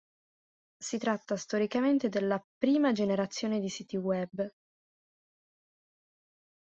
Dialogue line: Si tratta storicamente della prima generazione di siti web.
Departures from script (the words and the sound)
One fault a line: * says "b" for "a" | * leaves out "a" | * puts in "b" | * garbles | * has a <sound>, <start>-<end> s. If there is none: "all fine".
all fine